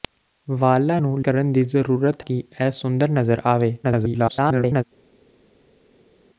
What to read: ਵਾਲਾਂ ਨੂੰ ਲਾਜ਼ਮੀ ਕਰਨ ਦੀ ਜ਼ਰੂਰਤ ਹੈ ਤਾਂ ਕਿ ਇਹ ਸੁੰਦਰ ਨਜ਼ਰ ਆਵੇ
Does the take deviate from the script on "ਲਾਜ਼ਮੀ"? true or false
true